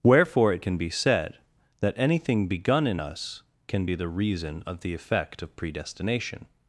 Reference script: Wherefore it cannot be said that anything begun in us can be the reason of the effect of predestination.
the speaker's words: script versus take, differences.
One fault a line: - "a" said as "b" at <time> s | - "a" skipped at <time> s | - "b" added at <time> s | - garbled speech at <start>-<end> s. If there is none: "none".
- "cannot" said as "can" at 0.6 s